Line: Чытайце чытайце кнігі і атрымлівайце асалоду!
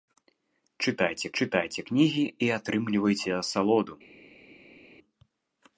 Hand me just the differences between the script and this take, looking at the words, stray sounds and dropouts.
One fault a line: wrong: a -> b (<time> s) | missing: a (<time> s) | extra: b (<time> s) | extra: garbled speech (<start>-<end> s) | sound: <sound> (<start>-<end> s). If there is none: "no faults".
no faults